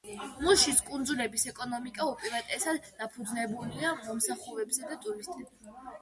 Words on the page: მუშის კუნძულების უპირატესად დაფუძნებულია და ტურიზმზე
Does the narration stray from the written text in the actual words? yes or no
yes